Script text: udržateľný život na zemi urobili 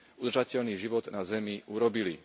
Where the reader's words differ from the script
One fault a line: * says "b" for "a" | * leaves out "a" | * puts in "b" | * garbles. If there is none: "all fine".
all fine